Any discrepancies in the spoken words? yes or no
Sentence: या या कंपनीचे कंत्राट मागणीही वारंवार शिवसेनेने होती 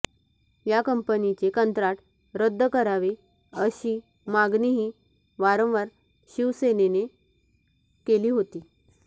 yes